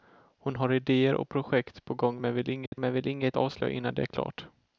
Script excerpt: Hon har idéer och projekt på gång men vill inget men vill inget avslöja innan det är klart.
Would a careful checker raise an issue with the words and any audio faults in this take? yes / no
yes